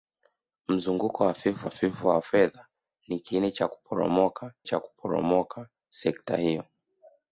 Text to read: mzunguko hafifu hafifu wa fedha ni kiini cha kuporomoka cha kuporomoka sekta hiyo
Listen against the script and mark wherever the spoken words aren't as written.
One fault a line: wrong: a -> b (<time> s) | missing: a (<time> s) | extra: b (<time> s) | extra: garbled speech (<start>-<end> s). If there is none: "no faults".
no faults